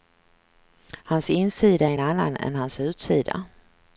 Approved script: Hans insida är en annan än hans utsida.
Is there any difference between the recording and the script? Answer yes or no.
no